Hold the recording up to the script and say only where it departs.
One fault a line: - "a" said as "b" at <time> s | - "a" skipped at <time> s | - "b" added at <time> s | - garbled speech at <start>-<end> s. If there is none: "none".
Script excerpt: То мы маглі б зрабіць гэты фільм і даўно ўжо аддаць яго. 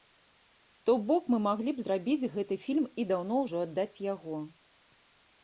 - "бок" added at 1.1 s